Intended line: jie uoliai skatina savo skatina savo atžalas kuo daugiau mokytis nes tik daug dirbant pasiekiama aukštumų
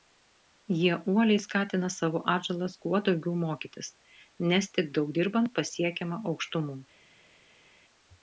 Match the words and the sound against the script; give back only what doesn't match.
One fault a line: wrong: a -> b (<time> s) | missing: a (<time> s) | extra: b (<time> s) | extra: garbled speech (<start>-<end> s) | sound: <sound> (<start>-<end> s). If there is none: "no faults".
missing: skatina savo (2.2 s)